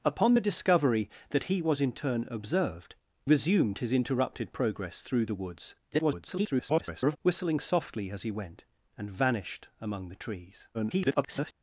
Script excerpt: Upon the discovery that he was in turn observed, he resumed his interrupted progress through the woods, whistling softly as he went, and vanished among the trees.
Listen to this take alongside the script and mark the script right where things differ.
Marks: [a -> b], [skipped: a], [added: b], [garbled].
Upon the discovery that he was in turn observed, [skipped: he] resumed his interrupted progress through the woods, [garbled] whistling softly as he went, and vanished among the trees. [garbled]